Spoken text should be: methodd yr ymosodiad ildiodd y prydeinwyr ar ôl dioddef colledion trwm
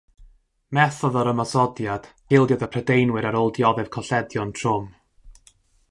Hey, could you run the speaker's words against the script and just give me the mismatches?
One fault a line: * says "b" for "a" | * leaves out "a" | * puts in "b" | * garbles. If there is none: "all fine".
all fine